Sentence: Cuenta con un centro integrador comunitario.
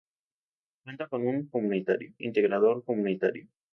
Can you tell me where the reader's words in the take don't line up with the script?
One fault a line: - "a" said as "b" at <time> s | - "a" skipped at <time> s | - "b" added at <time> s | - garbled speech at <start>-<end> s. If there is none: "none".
- "centro" said as "comunitario" at 1.5 s